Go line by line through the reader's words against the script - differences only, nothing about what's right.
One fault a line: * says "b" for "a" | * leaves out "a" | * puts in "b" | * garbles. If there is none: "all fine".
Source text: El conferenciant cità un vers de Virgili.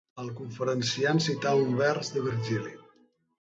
all fine